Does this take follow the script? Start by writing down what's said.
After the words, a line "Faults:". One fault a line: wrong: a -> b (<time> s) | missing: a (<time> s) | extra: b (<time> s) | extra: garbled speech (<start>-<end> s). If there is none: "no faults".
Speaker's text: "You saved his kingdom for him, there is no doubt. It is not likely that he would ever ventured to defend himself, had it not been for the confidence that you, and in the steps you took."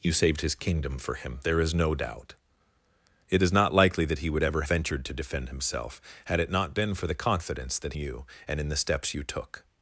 "You saved his kingdom for him, there is no doubt. It is not likely that he would ever ventured to defend himself, had it not been for the confidence that you, and in the steps you took."
Faults:
no faults